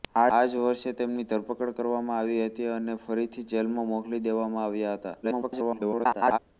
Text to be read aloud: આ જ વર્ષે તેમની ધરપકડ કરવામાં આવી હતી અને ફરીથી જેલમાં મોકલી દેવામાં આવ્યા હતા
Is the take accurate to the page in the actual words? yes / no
no